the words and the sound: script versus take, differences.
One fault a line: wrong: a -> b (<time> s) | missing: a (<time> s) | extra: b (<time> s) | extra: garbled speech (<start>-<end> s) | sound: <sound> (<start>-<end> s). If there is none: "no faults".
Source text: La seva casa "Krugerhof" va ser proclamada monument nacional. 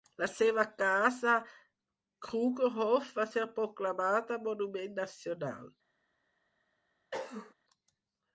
sound: cough (7.1-7.5 s)